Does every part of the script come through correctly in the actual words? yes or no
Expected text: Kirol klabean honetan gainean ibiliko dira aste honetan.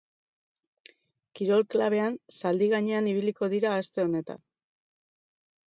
no